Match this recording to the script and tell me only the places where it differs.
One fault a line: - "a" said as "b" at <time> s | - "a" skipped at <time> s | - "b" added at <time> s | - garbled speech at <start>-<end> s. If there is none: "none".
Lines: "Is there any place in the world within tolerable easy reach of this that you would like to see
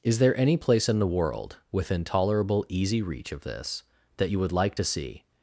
none